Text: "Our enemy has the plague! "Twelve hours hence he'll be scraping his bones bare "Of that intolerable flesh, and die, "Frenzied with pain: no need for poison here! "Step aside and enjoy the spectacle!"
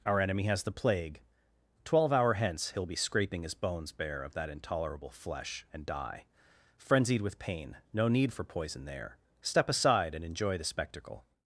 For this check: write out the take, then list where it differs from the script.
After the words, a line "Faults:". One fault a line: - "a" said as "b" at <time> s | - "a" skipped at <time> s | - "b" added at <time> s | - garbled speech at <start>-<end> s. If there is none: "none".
"Our enemy has the plague! "Twelve hour hence he'll be scraping his bones bare "Of that intolerable flesh, and die, "Frenzied with pain: no need for poison there! "Step aside and enjoy the spectacle!"
Faults:
- "hours" said as "hour" at 2.1 s
- "here" said as "there" at 8.8 s